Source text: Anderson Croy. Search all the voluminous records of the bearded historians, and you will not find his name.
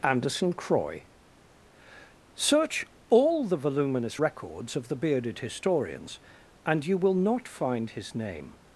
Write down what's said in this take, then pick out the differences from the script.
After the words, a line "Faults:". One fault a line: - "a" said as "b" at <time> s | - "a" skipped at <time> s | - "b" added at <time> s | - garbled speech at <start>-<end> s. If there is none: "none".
Anderson Croy. Search all the voluminous records of the bearded historians, and you will not find his name.
Faults:
none